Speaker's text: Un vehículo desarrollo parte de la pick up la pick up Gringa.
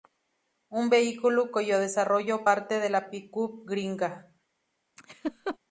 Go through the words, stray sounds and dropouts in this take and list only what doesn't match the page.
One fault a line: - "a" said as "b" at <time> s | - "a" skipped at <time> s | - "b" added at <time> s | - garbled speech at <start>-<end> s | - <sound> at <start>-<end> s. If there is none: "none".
- "cuyo" added at 1.5 s
- "la pick up" skipped at 3.6 s
- laugh at 5.0-5.6 s